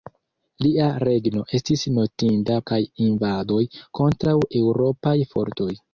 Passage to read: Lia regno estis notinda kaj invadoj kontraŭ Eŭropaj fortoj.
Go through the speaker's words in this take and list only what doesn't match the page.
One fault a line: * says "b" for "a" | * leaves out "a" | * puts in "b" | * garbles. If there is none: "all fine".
all fine